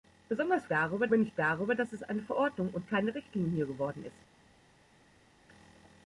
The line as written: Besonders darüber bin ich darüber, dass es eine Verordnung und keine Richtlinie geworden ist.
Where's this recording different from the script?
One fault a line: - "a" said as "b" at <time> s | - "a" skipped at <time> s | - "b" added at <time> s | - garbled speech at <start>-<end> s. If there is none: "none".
none